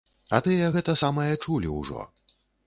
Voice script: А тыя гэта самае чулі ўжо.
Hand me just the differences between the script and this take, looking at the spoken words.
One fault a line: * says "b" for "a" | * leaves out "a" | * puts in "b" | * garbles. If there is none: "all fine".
all fine